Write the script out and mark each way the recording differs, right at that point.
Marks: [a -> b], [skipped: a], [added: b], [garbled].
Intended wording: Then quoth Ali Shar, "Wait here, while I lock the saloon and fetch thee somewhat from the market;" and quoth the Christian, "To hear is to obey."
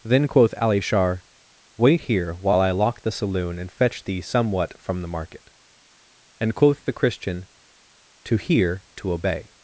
Then quoth Ali Shar, "Wait here, while I lock the saloon and fetch thee somewhat from the market;" and quoth the Christian, "To hear [skipped: is] to obey."